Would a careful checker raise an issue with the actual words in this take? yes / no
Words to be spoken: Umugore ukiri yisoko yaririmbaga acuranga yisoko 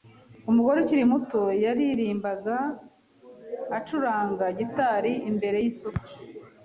yes